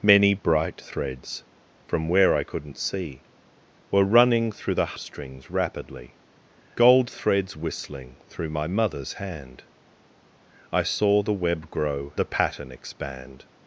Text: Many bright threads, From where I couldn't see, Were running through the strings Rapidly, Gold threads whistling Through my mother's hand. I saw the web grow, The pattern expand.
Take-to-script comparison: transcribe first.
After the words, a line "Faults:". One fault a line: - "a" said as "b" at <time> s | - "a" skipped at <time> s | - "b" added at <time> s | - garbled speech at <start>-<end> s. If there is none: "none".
Many bright threads, From where I couldn't see, Were running through the strings Rapidly, Gold threads whistling Through my mother's hand. I saw the web grow, The pattern expand.
Faults:
none